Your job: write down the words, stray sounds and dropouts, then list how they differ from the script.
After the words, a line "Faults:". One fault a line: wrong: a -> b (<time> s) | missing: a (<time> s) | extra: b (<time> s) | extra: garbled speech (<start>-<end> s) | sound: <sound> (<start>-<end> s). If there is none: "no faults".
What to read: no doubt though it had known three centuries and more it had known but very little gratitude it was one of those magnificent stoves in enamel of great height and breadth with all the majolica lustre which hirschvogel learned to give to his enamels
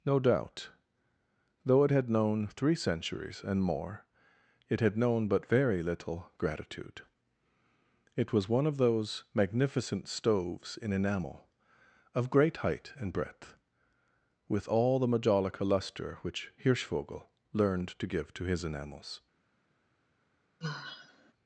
no doubt though it had known three centuries and more it had known but very little gratitude it was one of those magnificent stoves in enamel of great height and breadth with all the majolica lustre which hirschvogel learned to give to his enamels
Faults:
sound: sigh (20.6-21.3 s)